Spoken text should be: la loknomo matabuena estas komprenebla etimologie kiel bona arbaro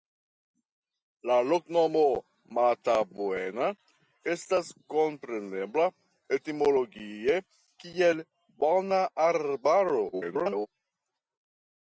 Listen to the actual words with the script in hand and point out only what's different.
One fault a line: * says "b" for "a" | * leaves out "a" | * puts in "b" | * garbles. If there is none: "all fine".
* garbles